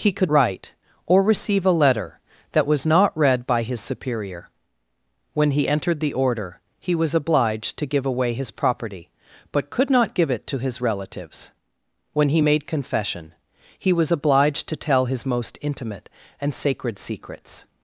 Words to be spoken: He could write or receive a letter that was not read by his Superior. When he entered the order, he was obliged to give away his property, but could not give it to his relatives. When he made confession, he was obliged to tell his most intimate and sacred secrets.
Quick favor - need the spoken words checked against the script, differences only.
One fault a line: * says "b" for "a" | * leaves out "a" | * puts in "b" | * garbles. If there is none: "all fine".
all fine